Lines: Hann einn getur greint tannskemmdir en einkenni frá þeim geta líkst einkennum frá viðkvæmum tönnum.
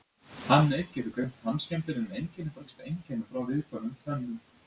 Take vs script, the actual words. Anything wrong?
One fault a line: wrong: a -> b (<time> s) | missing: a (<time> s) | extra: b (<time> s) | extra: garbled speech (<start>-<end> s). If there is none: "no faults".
missing: þeim geta (2.6 s)